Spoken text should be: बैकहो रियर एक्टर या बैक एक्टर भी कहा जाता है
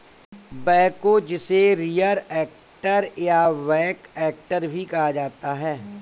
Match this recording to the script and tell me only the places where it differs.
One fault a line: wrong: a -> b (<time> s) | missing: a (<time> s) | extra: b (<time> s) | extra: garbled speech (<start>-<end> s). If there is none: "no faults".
extra: जिसे (1.2 s)